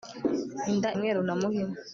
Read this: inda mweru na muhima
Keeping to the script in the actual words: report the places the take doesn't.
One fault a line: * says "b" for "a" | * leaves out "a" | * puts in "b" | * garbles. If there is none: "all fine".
all fine